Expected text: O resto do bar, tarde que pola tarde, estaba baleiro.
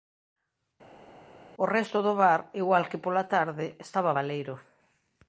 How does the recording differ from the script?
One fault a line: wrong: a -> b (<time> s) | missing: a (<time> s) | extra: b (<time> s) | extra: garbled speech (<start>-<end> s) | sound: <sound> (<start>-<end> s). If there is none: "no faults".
wrong: tarde -> igual (2.6 s)